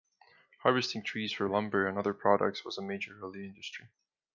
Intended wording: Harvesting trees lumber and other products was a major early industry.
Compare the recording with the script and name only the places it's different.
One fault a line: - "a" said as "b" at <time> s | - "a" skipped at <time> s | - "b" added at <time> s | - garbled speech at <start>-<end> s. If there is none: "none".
- "for" added at 1.3 s